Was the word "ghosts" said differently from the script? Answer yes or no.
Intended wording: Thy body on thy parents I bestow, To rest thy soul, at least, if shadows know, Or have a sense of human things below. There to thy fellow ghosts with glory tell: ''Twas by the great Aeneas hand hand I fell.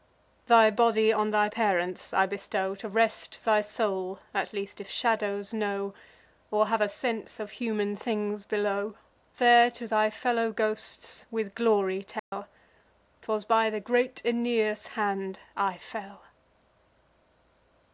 no